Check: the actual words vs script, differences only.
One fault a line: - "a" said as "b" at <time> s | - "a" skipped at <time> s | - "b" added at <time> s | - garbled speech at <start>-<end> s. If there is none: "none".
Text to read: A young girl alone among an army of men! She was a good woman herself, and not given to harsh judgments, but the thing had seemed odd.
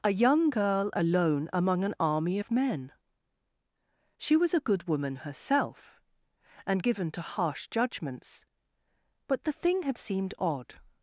- "not" skipped at 6.8 s